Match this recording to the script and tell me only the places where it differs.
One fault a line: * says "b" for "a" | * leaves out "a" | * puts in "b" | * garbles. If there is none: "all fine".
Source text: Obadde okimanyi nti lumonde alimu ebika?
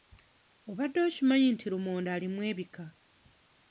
all fine